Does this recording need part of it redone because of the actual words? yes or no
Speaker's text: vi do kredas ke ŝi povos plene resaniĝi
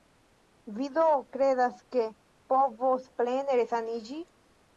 yes